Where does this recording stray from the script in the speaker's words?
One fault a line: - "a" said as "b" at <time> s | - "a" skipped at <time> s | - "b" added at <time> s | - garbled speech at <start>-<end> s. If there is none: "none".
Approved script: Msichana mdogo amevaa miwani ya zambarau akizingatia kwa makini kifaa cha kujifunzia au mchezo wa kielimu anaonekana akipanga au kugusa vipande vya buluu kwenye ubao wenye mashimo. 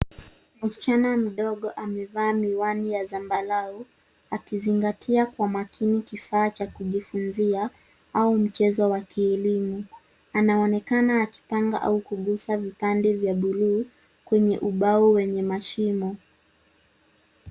none